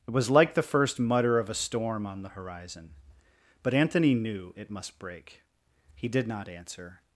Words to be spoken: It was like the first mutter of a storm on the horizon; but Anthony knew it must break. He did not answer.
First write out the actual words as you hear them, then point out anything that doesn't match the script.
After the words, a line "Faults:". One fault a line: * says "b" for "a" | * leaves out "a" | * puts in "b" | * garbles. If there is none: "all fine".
It was like the first mutter of a storm on the horizon; but Anthony knew it must break. He did not answer.
Faults:
all fine